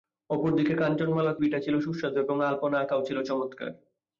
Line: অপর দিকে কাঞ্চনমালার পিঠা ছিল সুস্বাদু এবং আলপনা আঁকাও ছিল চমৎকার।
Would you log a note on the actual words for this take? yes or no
no